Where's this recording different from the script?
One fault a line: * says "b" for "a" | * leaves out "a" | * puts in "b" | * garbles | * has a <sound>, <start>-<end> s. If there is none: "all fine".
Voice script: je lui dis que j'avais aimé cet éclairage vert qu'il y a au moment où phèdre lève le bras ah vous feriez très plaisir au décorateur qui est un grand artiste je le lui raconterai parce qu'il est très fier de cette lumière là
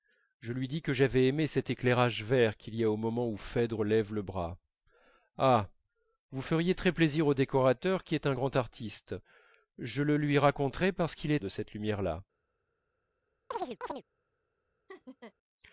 * leaves out "très fier"
* has a chirp, 13.5-14.0 s
* has a laugh, 14.9-15.3 s